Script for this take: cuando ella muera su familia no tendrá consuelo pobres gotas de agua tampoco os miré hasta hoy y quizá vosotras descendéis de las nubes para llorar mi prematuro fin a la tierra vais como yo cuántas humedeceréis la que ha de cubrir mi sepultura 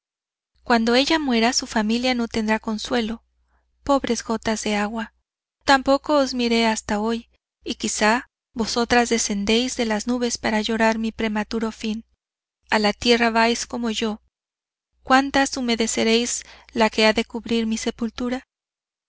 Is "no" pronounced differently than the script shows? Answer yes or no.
no